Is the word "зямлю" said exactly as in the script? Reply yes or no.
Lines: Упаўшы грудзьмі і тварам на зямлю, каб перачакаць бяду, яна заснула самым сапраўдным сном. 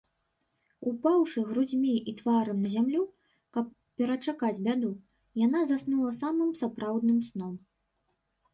yes